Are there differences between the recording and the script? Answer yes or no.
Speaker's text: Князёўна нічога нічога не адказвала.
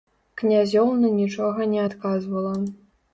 yes